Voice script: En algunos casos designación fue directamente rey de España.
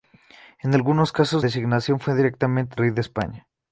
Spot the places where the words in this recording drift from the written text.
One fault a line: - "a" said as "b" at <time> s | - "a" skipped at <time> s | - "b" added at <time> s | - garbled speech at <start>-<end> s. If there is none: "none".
none